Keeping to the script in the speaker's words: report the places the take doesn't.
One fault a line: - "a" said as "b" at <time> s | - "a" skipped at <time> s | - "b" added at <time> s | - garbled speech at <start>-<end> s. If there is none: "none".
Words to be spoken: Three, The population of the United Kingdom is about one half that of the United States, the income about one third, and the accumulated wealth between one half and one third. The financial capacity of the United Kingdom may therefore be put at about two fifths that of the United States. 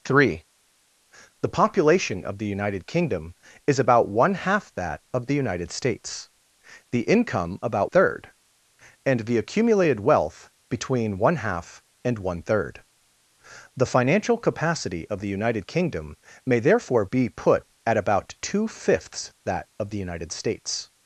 - "one" skipped at 7.9 s